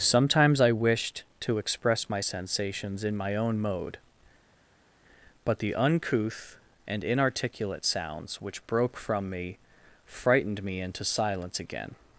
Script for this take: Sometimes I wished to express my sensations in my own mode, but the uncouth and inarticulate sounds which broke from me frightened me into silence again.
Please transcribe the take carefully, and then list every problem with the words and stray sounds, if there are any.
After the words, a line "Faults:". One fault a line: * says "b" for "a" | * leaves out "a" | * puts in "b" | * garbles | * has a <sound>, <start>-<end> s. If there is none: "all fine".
Sometimes I wished to express my sensations in my own mode, but the uncouth and inarticulate sounds which broke from me frightened me into silence again.
Faults:
all fine